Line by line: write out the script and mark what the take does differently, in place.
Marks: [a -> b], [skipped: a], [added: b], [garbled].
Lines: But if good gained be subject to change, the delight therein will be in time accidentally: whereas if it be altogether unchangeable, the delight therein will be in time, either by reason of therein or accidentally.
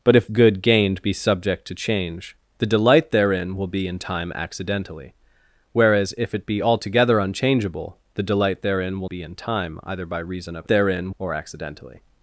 But if good gained be subject to change, the delight therein will be in time accidentally: whereas if it be altogether unchangeable, the delight therein will be in time, either by reason of therein or accidentally.